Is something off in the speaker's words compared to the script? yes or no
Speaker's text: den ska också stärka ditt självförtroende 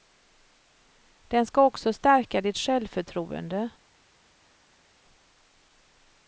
no